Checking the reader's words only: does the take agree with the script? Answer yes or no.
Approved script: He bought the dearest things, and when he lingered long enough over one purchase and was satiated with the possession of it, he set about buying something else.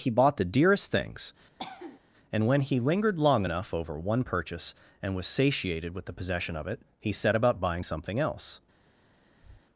yes